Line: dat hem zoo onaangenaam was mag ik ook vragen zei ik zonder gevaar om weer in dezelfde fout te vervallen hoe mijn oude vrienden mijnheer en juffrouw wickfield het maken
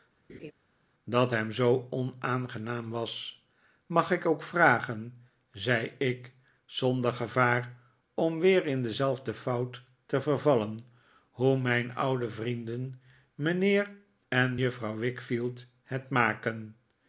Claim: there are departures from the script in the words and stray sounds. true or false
true